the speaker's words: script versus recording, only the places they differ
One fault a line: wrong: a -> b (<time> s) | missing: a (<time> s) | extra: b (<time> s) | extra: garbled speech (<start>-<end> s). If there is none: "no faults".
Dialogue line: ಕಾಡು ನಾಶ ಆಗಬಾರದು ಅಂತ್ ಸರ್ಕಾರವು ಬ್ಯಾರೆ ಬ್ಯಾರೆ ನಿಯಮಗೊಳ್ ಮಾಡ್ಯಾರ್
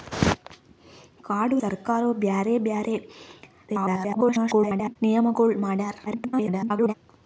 missing: ನಾಶ ಆಗಬಾರದು ಅಂತ್ (1.6 s)
extra: garbled speech (3.7-5.0 s)
extra: garbled speech (6.1-6.9 s)